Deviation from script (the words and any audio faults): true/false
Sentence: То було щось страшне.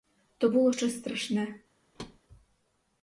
true